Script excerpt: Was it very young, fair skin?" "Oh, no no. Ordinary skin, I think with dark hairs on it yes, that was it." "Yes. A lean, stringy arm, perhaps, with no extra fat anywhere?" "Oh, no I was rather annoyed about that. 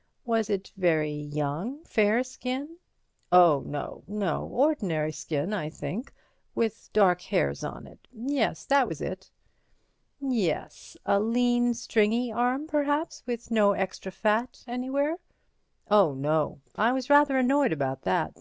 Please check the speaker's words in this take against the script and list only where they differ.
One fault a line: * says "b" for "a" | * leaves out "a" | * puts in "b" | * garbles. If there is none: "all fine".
all fine